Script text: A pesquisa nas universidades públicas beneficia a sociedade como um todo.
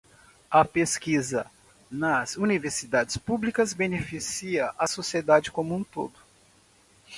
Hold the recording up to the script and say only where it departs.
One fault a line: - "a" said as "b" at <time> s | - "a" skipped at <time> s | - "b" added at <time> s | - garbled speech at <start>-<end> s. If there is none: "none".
none